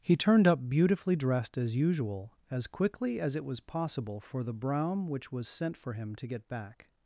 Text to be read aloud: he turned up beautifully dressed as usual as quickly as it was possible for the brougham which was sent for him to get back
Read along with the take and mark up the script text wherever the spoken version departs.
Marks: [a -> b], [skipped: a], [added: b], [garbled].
he turned up beautifully dressed as usual as quickly as it was possible for the brougham which was sent for him to get back